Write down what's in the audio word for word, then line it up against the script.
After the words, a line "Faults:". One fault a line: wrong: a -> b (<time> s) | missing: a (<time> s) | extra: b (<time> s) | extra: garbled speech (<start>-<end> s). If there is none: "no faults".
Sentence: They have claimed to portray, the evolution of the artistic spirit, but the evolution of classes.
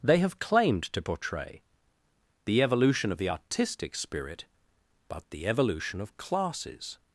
They have claimed to portray, the evolution of the artistic spirit, but the evolution of classes.
Faults:
no faults